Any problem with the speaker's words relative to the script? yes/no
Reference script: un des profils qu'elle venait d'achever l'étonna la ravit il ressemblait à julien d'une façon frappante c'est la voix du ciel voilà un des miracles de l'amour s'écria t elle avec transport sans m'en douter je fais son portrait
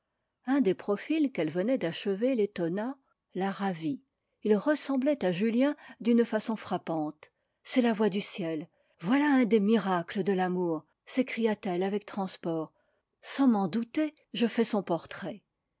no